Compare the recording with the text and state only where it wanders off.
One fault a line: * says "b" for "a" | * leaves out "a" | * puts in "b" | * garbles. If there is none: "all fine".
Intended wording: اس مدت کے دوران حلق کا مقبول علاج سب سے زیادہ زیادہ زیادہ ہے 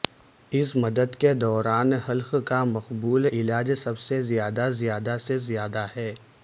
* puts in "سے"